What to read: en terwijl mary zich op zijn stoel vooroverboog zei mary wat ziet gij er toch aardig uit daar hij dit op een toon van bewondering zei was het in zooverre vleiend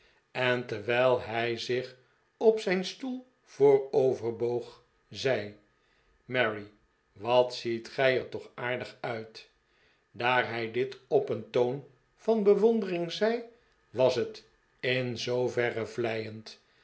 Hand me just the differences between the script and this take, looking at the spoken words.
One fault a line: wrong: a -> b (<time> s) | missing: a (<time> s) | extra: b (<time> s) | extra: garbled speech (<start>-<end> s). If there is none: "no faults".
wrong: mary -> hij (1.2 s)